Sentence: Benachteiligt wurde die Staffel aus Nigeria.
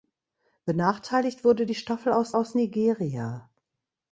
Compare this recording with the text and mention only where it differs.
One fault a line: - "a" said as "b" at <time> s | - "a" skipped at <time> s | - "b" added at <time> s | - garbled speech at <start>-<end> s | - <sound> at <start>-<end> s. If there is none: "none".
- "aus" added at 2.3 s